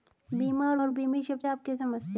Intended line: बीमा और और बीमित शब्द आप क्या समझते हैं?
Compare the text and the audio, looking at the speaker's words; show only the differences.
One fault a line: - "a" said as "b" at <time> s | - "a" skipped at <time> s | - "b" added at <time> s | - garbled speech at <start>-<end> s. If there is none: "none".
none